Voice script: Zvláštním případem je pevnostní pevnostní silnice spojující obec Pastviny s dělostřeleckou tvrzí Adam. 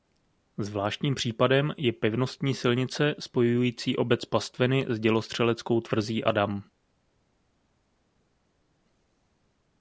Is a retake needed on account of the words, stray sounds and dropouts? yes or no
yes